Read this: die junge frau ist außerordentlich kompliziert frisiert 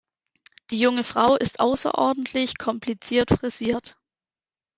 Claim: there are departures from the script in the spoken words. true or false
false